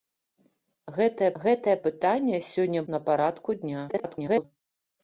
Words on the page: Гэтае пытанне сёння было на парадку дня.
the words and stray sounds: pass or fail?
fail